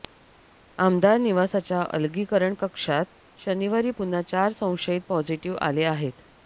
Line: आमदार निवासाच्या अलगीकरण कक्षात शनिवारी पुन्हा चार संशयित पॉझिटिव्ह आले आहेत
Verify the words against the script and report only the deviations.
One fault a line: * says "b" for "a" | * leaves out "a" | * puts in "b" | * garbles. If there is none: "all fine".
all fine